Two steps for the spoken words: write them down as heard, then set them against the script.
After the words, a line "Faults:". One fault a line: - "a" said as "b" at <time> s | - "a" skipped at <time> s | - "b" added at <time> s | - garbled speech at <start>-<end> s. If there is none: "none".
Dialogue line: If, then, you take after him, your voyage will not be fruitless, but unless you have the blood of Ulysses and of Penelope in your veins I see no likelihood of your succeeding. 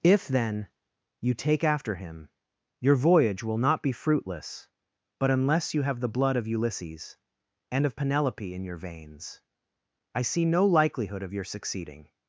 If, then, you take after him, your voyage will not be fruitless, but unless you have the blood of Ulysses and of Penelope in your veins I see no likelihood of your succeeding.
Faults:
none